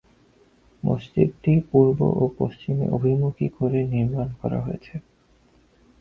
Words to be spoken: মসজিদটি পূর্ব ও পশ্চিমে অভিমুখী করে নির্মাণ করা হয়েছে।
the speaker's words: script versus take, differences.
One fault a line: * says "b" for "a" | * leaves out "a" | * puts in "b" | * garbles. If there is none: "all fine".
all fine